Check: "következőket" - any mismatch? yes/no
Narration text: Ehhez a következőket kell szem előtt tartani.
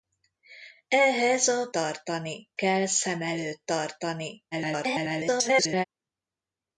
yes